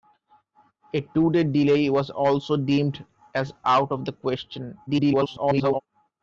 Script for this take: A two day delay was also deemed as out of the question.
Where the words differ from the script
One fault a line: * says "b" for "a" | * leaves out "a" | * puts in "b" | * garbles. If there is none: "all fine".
* garbles